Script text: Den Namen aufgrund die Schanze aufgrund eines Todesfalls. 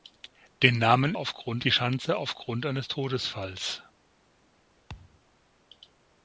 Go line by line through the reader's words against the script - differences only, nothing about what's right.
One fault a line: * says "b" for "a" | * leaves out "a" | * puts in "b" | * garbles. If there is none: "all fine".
all fine